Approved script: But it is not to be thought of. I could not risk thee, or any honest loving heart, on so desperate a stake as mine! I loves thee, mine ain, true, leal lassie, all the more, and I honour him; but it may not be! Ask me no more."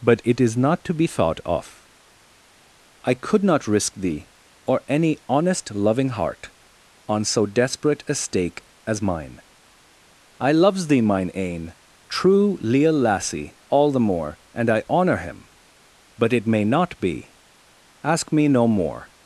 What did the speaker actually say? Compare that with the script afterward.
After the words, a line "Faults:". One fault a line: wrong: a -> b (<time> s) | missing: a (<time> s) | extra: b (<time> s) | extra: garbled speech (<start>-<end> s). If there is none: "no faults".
But it is not to be thought of. I could not risk thee, or any honest loving heart, on so desperate a stake as mine! I loves thee, mine ain, true, leal lassie, all the more, and I honour him; but it may not be! Ask me no more."
Faults:
no faults